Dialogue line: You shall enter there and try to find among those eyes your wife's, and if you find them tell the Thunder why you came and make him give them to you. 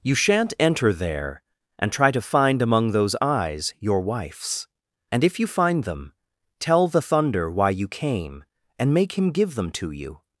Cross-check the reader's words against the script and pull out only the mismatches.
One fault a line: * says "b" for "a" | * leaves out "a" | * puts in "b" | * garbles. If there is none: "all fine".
* says "shan't" for "shall"